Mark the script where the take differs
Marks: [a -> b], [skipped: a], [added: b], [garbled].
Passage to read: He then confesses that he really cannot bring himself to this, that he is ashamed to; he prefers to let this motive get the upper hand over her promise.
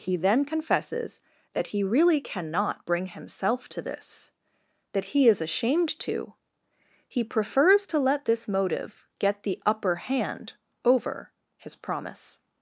He then confesses that he really cannot bring himself to this, that he is ashamed to; he prefers to let this motive get the upper hand over [her -> his] promise.